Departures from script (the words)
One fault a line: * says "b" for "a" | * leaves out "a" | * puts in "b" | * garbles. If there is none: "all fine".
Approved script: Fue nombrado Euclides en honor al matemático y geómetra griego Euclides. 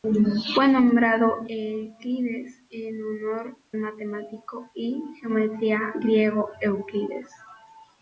* leaves out "al"